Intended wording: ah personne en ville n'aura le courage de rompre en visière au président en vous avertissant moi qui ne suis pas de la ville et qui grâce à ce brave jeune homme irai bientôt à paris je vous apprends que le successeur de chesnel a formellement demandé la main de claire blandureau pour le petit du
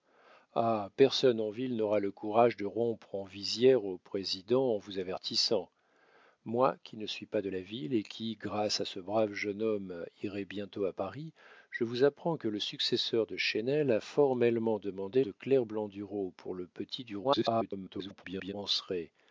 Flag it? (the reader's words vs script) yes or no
yes